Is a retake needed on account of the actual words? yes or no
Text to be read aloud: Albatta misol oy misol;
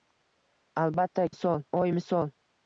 no